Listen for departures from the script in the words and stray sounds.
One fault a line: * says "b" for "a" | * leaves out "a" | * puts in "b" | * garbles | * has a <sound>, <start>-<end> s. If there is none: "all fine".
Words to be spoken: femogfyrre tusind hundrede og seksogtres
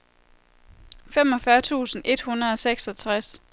* puts in "et"